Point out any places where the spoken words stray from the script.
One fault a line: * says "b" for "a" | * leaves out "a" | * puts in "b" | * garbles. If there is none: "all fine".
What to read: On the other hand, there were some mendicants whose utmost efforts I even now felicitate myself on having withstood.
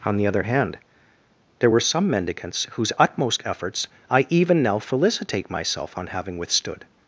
all fine